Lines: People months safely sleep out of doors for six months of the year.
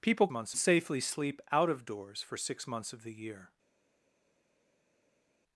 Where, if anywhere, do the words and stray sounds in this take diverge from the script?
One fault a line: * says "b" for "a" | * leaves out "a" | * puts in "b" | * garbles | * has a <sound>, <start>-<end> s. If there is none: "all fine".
all fine